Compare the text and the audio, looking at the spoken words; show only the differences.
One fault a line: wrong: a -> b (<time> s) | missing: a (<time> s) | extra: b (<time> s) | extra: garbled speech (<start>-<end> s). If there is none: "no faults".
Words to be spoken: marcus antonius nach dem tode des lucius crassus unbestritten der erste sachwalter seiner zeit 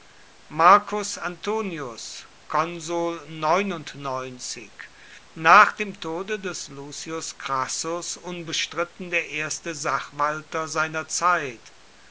no faults